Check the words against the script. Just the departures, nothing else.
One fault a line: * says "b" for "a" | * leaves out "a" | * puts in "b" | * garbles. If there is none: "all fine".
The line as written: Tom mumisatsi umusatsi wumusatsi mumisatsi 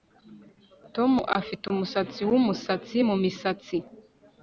* says "afite" for "mumisatsi"